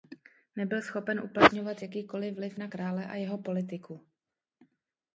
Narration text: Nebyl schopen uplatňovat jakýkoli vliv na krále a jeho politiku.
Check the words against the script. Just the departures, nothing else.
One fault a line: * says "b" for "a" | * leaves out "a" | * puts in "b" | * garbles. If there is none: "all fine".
all fine